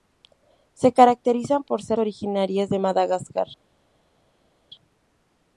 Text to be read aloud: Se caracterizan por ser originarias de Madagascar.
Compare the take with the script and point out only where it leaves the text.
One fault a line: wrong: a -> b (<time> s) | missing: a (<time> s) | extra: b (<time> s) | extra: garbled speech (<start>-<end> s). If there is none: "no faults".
no faults